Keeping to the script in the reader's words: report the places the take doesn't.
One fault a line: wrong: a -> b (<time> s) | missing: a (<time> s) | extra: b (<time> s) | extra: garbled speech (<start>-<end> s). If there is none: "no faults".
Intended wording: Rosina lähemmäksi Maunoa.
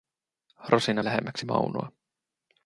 no faults